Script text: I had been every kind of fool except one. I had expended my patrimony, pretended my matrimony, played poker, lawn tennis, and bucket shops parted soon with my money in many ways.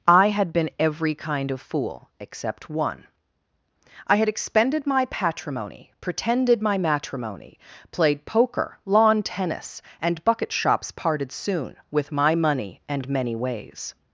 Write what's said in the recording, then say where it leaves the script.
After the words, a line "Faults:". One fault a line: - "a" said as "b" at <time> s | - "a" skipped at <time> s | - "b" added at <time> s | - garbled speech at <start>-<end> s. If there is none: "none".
I had been every kind of fool except one. I had expended my patrimony, pretended my matrimony, played poker, lawn tennis, and bucket shops parted soon with my money and many ways.
Faults:
- "in" said as "and" at 12.9 s